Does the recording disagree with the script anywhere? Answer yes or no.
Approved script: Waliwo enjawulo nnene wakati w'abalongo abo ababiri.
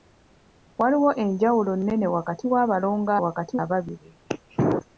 yes